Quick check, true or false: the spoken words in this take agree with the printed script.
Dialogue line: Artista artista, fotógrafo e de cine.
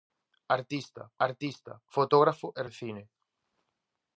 true